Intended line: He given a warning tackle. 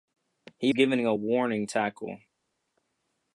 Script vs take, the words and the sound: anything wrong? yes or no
no